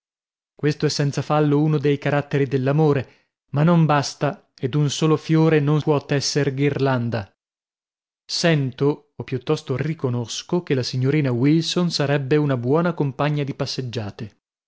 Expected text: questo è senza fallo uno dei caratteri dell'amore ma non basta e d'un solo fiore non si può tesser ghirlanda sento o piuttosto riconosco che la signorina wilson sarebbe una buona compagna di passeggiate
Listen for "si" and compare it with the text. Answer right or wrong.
wrong